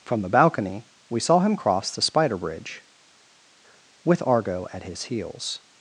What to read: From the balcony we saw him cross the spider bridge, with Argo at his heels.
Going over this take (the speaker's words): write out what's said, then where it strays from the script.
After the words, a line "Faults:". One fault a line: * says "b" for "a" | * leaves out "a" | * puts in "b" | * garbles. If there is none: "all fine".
From the balcony we saw him cross the spider bridge, with Argo at his heels.
Faults:
all fine